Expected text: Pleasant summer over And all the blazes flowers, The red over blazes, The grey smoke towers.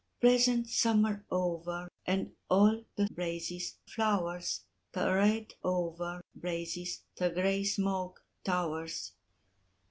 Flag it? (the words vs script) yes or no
no